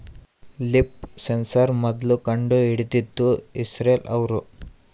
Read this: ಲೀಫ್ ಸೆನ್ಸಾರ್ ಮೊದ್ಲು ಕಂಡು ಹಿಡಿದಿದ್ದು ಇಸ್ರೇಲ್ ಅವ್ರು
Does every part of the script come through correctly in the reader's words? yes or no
yes